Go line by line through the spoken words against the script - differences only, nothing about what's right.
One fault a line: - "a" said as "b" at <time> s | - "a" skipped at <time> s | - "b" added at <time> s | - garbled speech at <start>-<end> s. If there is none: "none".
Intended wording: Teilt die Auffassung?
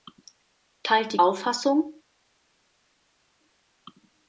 none